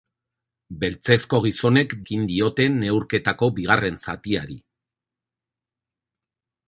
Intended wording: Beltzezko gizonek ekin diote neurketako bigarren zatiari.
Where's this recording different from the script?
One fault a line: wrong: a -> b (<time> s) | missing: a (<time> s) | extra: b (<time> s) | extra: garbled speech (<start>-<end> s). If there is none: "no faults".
no faults